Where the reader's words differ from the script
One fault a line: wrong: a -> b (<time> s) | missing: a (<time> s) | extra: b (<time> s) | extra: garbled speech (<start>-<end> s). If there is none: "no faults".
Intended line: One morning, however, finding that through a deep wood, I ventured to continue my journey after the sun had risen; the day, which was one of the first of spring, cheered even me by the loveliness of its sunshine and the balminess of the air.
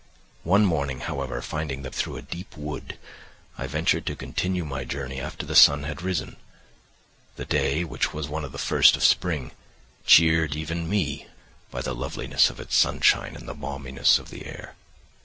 no faults